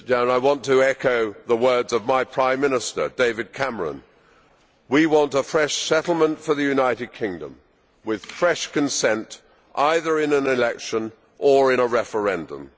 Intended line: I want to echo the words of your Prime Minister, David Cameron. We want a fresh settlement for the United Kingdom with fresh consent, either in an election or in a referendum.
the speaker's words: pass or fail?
fail